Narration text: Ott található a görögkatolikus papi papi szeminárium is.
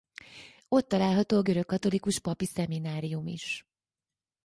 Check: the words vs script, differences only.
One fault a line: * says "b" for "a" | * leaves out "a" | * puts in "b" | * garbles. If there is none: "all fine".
* leaves out "papi"